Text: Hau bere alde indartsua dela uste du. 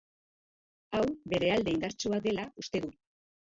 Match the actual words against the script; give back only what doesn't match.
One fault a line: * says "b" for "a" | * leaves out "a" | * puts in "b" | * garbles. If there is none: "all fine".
all fine